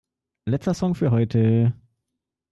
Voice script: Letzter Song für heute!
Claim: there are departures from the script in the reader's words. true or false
false